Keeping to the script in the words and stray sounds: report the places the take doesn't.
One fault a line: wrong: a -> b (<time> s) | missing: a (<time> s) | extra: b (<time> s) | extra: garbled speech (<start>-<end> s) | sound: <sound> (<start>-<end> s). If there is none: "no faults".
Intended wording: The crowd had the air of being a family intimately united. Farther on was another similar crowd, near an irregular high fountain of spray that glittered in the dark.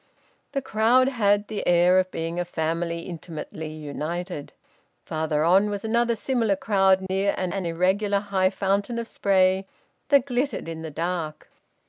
sound: dropout (7.1-7.1 s)
extra: an (7.5 s)